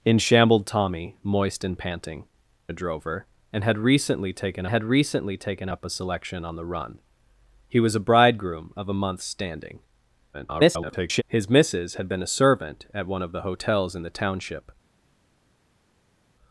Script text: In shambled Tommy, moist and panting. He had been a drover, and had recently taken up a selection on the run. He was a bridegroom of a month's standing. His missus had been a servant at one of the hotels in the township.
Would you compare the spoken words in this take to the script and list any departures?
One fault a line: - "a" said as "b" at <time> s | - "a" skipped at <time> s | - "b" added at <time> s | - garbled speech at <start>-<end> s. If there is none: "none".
- "He had been a drover and" said as "A drover and had recently taken" at 2.7 s
- garbled speech at 10.3-11.2 s